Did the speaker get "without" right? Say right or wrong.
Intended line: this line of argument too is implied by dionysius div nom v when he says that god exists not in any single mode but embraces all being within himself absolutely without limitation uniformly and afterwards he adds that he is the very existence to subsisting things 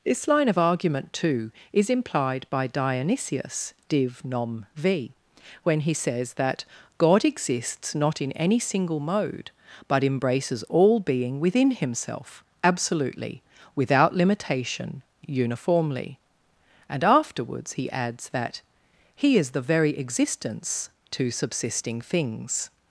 right